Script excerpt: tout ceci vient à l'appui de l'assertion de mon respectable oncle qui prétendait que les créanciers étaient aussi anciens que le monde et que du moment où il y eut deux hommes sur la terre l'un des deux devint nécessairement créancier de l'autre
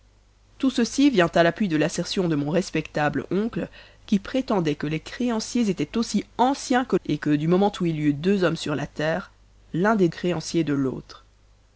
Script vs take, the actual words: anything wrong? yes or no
yes